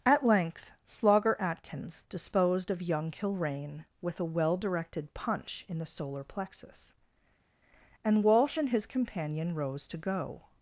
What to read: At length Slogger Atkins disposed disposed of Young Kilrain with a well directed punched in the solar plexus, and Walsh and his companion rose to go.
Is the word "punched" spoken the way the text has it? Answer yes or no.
no